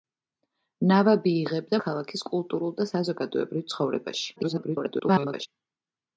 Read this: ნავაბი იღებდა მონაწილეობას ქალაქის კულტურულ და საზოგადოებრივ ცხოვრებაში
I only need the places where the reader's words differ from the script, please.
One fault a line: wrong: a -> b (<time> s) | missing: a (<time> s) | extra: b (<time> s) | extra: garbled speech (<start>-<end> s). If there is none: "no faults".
missing: მონაწილეობას (1.8 s)
extra: garbled speech (4.4-5.5 s)